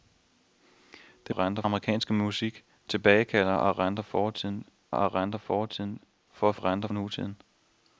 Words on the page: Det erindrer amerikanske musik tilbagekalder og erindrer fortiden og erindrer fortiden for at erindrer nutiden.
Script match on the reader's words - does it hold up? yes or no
yes